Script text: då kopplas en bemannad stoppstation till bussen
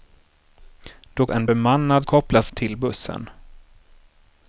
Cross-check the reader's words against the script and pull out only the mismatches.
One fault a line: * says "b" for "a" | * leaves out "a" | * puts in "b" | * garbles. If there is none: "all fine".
* leaves out "kopplas"
* says "kopplas" for "stoppstation"